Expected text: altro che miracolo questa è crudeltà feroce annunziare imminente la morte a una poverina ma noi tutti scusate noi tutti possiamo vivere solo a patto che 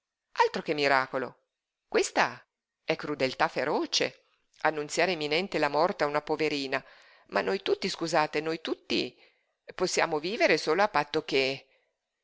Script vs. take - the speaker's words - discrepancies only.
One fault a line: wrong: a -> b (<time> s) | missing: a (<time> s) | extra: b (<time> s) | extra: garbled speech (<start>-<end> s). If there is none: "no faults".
no faults